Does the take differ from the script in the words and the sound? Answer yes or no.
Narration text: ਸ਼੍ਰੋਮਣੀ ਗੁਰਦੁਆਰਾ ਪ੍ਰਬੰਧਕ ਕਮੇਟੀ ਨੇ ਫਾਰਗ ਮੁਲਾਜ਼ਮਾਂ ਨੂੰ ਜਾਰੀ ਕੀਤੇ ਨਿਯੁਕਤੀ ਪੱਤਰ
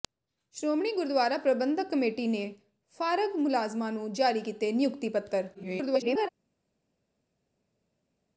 yes